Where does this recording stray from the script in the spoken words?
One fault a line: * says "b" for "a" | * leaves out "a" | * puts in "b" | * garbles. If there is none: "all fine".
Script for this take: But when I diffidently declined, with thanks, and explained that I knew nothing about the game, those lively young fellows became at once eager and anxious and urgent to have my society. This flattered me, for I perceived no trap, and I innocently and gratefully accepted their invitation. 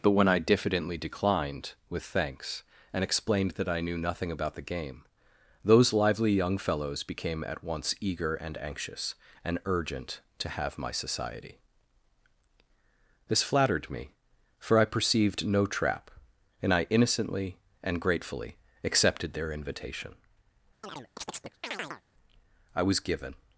* puts in "I was given"